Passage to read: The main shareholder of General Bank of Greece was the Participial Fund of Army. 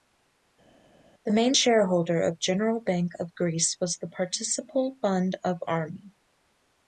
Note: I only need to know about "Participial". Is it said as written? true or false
true